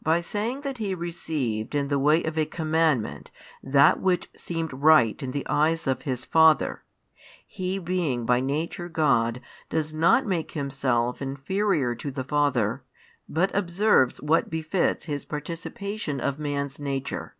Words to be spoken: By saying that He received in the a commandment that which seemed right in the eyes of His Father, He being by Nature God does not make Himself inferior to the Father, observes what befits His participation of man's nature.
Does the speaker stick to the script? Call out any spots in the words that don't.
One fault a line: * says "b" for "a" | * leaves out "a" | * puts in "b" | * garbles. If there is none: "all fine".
* puts in "way of"
* puts in "but"